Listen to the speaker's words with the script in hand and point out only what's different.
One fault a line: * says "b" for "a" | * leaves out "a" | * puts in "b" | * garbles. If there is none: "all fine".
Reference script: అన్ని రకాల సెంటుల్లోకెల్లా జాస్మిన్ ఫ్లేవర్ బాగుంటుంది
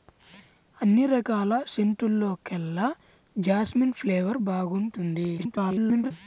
* garbles